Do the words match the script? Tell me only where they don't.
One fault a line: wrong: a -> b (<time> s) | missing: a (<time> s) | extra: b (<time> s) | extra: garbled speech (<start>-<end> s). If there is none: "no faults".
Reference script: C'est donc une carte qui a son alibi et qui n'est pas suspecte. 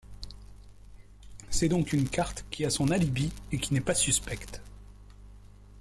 no faults